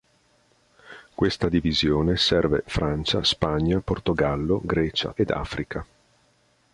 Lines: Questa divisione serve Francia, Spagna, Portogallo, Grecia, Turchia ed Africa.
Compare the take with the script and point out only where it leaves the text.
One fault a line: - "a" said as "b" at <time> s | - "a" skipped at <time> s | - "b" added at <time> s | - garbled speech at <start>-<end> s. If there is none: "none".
- "Turchia" skipped at 5.1 s